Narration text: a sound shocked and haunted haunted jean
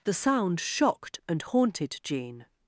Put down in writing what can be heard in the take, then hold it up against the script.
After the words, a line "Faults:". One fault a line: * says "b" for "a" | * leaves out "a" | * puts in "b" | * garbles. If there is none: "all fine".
the sound shocked and haunted jean
Faults:
* says "the" for "a"
* leaves out "haunted"